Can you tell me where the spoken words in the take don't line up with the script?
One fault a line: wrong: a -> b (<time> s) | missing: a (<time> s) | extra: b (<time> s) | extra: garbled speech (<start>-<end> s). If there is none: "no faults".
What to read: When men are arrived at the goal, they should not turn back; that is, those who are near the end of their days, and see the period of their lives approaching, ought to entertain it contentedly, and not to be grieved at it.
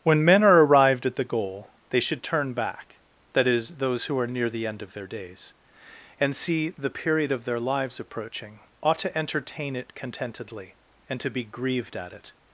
missing: not (2.2 s)
missing: not (11.2 s)